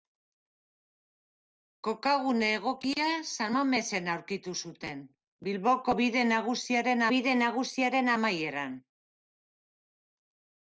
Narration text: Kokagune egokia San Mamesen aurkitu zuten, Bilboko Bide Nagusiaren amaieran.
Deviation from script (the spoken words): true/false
true